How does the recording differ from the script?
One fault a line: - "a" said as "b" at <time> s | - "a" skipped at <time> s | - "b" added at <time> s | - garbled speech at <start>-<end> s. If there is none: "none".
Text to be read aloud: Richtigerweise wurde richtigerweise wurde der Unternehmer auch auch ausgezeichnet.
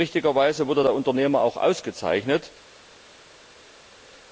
- "richtigerweise wurde" skipped at 0.8 s
- "auch" skipped at 1.6 s